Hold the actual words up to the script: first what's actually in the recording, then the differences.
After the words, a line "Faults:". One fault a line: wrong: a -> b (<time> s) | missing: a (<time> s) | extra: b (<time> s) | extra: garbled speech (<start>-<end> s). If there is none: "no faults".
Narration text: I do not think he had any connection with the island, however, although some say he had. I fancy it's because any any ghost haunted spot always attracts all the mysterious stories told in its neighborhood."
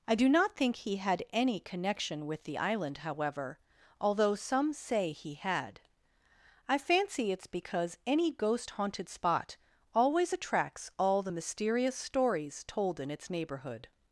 I do not think he had any connection with the island, however, although some say he had. I fancy it's because any ghost haunted spot always attracts all the mysterious stories told in its neighborhood."
Faults:
missing: any (8.3 s)